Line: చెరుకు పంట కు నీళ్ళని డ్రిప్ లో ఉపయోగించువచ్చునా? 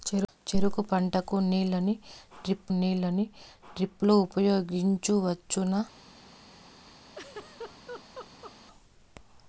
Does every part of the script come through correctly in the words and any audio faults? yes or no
no